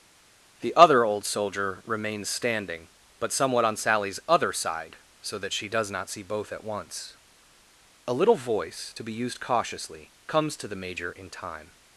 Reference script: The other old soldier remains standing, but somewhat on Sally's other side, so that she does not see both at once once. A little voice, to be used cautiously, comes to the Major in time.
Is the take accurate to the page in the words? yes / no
no